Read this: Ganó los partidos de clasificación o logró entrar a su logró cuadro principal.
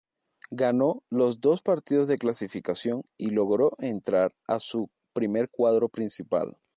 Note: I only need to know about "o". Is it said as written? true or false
false